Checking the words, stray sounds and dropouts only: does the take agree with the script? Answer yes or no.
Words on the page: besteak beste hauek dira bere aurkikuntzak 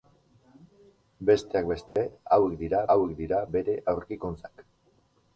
no